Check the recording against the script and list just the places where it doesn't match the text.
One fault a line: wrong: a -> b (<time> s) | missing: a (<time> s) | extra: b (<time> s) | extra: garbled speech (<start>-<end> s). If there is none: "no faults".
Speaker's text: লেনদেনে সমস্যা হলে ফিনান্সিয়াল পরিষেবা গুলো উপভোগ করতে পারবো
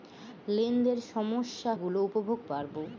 missing: হলে ফিনান্সিয়াল পরিষেবা (1.7 s)
missing: করতে (2.4 s)